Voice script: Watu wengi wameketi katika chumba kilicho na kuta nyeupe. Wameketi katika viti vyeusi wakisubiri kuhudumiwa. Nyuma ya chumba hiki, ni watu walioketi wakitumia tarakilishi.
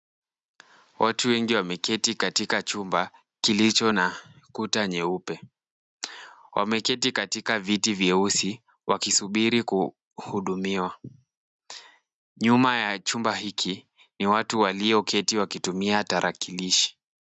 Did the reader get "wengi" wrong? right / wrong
right